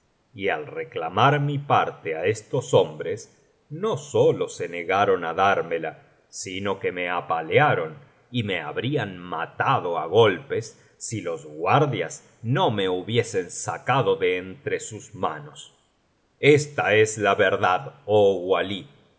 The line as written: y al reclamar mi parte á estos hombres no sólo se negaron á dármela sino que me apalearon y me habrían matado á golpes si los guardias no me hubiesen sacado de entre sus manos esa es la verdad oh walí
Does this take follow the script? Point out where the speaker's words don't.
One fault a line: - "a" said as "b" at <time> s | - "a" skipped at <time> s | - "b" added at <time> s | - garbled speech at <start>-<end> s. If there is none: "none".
- "esa" said as "esta" at 16.4 s